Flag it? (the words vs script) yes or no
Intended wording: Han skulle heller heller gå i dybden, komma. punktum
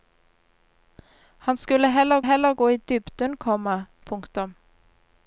no